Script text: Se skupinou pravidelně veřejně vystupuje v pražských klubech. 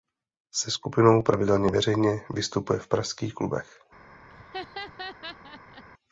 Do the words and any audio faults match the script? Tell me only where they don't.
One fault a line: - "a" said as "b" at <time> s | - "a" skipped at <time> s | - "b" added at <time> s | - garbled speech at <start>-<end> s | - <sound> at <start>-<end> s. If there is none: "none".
- laugh at 4.3-5.8 s